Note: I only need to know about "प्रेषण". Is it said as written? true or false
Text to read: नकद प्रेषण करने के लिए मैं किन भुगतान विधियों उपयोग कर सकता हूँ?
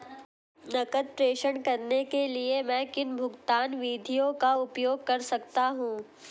true